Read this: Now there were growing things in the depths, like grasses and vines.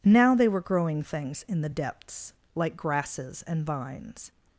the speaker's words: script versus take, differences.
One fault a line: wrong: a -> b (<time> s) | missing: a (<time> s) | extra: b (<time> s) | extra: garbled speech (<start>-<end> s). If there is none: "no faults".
wrong: there -> they (0.3 s)